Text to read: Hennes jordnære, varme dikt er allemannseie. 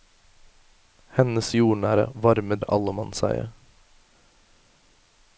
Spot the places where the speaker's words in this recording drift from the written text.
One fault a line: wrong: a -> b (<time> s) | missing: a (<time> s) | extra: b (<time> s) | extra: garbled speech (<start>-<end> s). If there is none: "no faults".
missing: dikt (2.6 s)